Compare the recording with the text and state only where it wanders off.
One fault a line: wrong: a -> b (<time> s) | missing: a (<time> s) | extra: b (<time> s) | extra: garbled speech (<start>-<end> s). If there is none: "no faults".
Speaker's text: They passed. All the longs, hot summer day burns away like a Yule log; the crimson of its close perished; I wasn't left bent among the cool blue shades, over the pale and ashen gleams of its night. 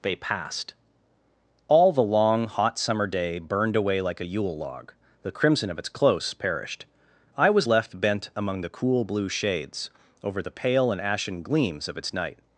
wrong: longs -> long (2.0 s)
wrong: burns -> burned (3.4 s)
wrong: wasn't -> was (7.5 s)